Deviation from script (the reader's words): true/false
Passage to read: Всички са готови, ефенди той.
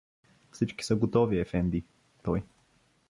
false